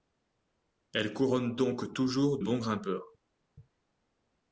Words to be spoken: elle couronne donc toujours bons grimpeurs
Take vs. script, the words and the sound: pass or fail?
pass